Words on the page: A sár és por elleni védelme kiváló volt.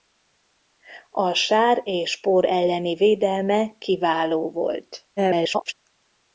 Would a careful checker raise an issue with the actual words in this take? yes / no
yes